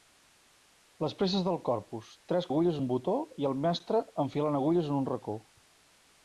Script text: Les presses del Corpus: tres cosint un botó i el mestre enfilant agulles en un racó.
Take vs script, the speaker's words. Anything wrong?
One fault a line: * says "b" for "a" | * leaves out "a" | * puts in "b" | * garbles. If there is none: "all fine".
* says "agulles" for "cosint"